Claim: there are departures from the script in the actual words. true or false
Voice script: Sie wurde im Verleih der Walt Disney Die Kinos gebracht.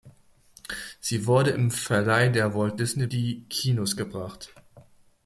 false